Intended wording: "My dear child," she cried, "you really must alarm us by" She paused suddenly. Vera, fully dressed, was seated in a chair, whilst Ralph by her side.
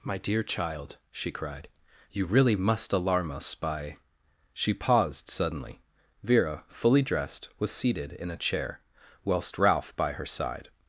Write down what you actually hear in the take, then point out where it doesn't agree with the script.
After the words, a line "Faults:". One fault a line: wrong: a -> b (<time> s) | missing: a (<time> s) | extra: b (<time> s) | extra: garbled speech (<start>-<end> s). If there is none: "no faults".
"My dear child," she cried, "you really must alarm us by" She paused suddenly. Vera, fully dressed, was seated in a chair, whilst Ralph by her side.
Faults:
no faults